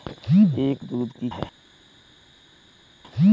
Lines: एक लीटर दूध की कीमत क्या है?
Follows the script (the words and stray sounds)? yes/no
no